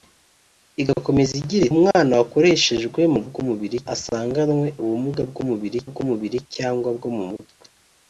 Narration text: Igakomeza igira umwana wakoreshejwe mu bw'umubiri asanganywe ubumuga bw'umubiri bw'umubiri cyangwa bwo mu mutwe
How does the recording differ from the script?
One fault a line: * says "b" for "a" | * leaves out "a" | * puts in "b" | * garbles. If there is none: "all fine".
all fine